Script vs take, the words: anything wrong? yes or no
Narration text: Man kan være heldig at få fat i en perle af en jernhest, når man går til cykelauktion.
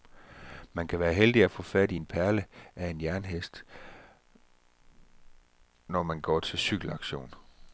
no